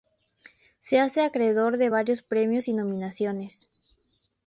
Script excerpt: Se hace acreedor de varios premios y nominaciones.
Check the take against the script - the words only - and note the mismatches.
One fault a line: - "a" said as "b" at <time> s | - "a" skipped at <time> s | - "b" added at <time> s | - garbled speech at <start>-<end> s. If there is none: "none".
none